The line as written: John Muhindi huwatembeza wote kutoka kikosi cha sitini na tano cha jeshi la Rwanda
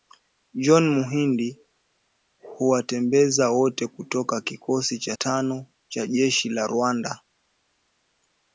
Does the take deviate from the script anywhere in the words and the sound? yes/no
yes